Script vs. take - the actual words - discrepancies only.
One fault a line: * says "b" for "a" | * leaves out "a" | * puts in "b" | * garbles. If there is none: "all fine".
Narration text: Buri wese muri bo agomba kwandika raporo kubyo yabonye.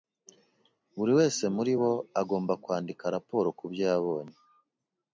all fine